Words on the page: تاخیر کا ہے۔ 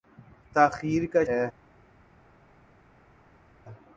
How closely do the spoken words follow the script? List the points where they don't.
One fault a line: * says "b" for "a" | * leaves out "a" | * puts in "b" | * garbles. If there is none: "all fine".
all fine